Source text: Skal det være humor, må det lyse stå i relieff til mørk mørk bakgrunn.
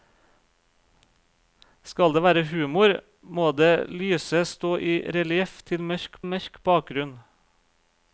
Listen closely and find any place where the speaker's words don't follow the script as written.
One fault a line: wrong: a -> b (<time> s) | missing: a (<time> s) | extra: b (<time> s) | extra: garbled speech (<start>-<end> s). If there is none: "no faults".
no faults